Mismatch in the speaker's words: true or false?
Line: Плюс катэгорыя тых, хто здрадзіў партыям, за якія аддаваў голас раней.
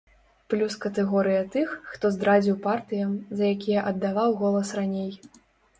false